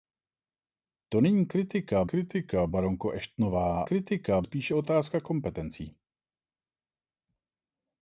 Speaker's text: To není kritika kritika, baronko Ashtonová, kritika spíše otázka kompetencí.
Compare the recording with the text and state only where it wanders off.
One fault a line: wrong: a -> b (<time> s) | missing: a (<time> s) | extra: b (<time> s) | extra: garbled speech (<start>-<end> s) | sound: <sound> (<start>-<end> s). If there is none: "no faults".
no faults